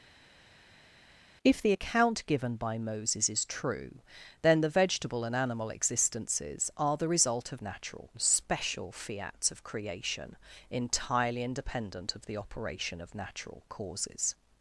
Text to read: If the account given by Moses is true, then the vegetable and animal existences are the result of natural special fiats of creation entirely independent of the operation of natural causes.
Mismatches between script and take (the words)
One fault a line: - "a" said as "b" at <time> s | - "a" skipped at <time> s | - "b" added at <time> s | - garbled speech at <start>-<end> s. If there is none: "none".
none